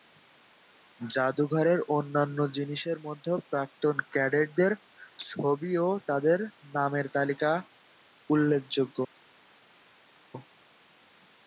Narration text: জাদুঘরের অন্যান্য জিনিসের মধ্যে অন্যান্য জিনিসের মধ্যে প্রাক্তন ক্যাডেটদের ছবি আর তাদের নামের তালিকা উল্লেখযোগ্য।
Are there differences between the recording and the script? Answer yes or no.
yes